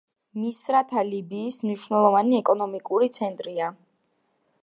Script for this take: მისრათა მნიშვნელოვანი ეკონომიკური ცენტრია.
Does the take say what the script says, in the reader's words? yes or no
no